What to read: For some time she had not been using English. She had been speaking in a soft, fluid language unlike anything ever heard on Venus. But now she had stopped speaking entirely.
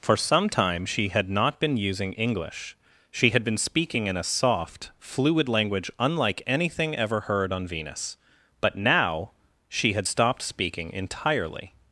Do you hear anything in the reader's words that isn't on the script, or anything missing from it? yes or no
no